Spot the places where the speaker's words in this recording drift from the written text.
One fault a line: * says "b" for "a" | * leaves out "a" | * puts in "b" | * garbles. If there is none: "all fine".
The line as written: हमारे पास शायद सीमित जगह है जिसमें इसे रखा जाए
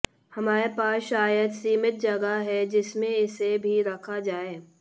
* puts in "भी"